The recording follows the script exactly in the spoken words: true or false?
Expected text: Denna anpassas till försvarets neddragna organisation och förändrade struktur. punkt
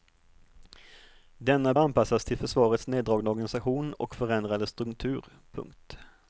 true